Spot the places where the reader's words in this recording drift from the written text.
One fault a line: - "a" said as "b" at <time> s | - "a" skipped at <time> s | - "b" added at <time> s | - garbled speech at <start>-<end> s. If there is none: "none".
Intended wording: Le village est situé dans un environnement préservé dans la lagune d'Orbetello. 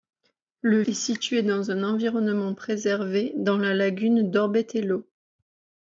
- "village" skipped at 0.8 s